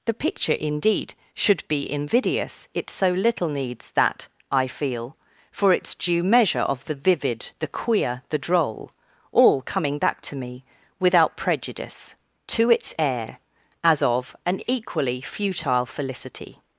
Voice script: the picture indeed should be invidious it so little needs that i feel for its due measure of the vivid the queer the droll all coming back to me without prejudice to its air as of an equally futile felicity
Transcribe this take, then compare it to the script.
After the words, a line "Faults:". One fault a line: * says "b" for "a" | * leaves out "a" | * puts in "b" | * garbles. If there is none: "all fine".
the picture indeed should be invidious it so little needs that i feel for its due measure of the vivid the queer the droll all coming back to me without prejudice to its air as of an equally futile felicity
Faults:
all fine